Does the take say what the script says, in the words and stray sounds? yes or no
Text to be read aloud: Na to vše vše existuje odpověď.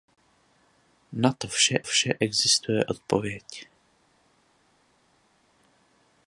yes